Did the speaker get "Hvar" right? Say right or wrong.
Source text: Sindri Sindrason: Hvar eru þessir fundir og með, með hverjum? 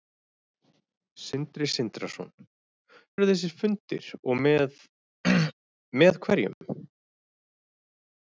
wrong